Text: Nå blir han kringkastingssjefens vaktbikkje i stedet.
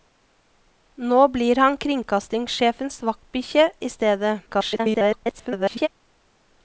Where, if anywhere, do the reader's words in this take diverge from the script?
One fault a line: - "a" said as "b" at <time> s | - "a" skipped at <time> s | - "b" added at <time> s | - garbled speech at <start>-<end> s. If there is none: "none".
- garbled speech at 4.5-5.9 s